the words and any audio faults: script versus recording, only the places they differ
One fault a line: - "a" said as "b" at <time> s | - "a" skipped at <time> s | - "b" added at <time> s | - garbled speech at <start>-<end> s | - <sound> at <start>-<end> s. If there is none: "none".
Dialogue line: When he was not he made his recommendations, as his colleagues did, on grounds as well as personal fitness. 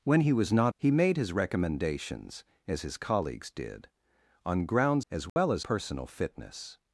- dropout at 5.3-5.4 s